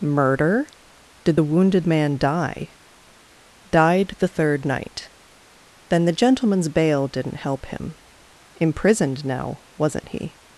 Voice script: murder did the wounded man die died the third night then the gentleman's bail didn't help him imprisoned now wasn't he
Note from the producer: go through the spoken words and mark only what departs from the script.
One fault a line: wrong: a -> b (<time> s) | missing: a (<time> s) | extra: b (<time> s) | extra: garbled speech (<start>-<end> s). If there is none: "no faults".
no faults